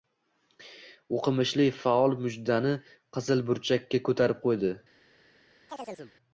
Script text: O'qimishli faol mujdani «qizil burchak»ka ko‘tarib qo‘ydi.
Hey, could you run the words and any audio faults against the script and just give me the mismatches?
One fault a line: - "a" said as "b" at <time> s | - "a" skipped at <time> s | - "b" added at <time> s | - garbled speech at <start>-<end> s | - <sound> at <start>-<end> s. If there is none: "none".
- chirp at 5.7-6.1 s